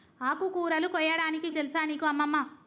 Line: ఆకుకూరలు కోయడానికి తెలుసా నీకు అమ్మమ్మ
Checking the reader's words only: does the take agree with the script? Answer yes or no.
yes